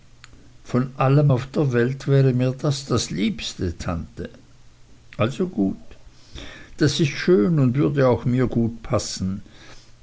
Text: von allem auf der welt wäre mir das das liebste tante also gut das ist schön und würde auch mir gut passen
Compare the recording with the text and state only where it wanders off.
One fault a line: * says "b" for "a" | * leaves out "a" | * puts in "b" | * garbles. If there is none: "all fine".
all fine